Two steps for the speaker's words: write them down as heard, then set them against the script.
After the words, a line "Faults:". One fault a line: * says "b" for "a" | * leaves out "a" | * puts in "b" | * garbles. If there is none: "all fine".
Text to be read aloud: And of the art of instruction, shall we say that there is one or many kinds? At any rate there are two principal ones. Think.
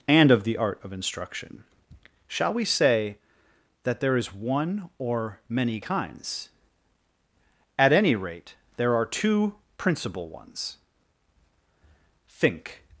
And of the art of instruction, shall we say that there is one or many kinds? At any rate there are two principal ones. Think.
Faults:
all fine